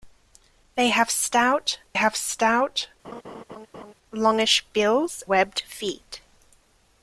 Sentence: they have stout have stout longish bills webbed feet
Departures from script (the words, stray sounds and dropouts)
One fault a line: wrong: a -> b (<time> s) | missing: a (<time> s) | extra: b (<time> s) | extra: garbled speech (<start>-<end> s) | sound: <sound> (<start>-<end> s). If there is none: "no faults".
sound: laugh (3.0-3.9 s)